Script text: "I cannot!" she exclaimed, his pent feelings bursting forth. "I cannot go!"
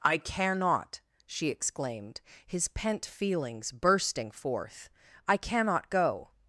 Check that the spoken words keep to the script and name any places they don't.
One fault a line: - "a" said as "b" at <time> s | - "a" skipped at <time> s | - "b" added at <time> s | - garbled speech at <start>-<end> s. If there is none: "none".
none